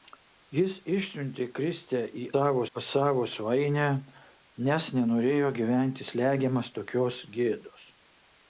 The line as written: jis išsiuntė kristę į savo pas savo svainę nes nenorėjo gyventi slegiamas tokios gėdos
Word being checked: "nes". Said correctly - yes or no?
yes